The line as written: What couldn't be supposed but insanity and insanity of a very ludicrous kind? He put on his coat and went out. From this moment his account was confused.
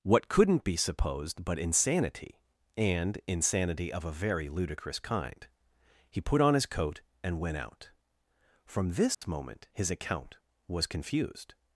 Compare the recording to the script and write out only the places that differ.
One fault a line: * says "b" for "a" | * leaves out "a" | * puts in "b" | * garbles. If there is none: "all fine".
all fine